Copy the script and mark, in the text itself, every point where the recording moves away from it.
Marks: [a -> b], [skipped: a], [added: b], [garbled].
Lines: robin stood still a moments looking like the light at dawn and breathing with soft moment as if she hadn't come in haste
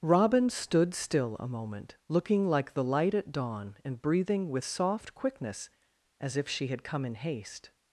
robin stood still a [moments -> moment] looking like the light at dawn and breathing with soft [moment -> quickness] as if she [hadn't -> had] come in haste